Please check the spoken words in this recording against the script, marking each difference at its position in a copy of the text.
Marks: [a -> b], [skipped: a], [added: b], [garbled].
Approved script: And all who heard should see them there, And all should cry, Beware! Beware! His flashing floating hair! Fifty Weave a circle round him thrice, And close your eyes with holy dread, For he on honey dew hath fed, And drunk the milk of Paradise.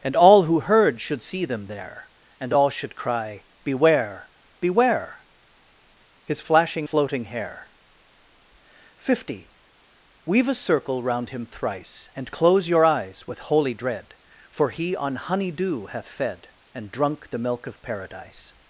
And all who heard should see them there, And all should cry, Beware! Beware! His flashing floating hair! Fifty Weave a circle round him thrice, And close your eyes with holy dread, For he on honey dew hath fed, And drunk the milk of Paradise.